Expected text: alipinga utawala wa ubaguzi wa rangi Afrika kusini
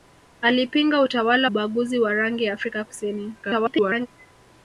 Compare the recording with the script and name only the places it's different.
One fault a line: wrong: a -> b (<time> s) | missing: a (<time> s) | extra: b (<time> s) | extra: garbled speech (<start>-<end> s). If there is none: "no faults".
missing: wa (1.5 s)
extra: garbled speech (3.4-4.1 s)